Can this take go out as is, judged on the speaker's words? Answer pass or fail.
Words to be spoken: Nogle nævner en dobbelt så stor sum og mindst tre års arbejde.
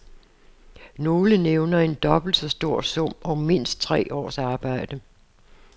pass